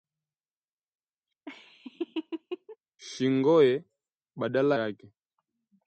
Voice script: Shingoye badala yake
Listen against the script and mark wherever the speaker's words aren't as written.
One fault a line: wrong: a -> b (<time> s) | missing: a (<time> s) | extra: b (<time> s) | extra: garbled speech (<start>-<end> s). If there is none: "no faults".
no faults